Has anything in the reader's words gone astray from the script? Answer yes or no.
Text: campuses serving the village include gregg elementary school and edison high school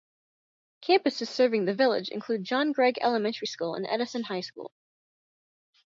yes